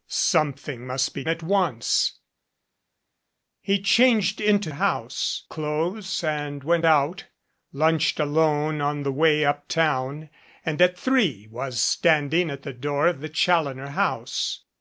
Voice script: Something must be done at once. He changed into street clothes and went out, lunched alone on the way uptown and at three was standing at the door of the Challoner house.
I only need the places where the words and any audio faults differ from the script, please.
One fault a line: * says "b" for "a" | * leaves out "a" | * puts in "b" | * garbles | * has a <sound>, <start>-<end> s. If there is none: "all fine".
* leaves out "done"
* says "house" for "street"